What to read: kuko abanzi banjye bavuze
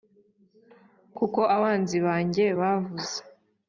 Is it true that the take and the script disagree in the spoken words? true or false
false